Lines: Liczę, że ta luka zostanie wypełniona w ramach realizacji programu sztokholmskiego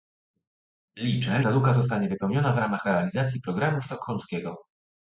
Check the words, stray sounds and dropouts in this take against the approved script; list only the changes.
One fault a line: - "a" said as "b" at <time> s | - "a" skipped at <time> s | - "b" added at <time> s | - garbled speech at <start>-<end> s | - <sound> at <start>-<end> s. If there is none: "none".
- "że" skipped at 1.4 s